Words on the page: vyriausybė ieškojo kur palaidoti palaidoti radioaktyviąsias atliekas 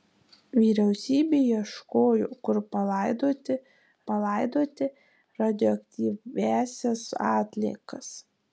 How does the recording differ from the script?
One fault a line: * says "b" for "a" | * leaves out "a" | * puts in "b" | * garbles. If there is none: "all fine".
all fine